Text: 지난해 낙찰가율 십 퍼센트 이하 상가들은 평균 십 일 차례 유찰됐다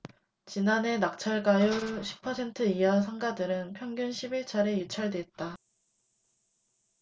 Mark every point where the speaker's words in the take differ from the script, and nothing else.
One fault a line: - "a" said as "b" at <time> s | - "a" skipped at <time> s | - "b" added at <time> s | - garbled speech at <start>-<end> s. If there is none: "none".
none